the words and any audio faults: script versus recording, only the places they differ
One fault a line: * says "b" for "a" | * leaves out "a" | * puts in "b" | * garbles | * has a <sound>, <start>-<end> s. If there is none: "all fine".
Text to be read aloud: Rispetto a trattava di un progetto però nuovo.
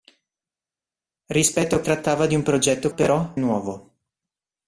all fine